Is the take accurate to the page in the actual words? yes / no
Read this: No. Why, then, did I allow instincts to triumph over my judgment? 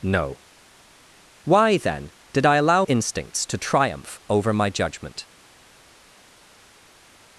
yes